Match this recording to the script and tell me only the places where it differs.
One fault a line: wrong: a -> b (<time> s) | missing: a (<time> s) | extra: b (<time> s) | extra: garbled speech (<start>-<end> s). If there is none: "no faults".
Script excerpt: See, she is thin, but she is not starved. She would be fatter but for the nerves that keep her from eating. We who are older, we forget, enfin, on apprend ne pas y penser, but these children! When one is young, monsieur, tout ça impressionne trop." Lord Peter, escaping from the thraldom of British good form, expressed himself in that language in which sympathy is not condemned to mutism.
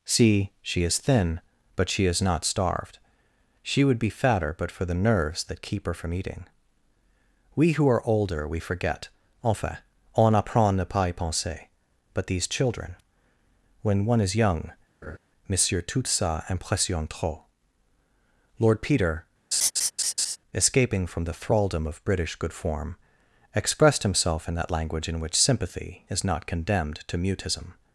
no faults